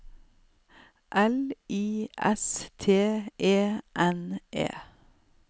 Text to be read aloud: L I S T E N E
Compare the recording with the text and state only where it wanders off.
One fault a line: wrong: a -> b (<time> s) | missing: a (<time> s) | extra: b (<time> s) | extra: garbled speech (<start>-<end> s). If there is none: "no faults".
no faults